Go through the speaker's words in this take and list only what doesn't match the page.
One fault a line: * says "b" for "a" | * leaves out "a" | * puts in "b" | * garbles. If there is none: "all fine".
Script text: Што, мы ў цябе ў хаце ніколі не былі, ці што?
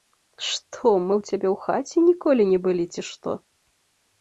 all fine